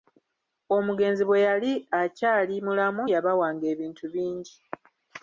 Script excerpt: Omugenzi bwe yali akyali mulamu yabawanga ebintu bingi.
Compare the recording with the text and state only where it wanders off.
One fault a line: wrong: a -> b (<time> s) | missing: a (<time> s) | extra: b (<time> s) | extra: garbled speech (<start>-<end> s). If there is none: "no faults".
no faults